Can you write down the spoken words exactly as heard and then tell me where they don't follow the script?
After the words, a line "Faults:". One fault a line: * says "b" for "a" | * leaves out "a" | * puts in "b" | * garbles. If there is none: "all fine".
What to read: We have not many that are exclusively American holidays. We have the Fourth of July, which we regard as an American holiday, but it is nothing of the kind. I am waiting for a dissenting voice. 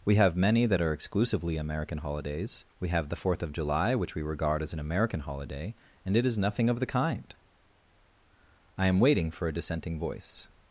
We have many that are exclusively American holidays. We have the Fourth of July, which we regard as an American holiday, and it is nothing of the kind. I am waiting for a dissenting voice.
Faults:
* leaves out "not"
* says "and" for "but"